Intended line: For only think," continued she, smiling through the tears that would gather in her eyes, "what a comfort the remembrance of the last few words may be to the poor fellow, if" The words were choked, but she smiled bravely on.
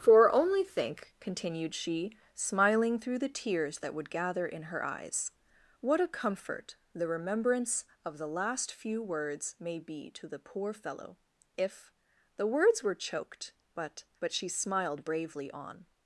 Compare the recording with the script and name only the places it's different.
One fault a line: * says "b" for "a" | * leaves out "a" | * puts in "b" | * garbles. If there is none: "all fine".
* puts in "but"